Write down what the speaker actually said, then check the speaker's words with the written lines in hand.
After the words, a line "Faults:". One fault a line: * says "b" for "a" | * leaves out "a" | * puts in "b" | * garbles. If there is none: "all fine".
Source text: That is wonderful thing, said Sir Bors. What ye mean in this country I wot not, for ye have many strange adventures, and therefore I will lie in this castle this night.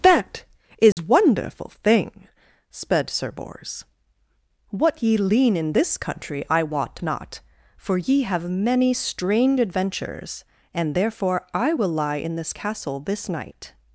That is wonderful thing, sped Sir Bors. What ye lean in this country I wot not, for ye have many strange adventures, and therefore I will lie in this castle this night.
Faults:
* says "sped" for "said"
* says "lean" for "mean"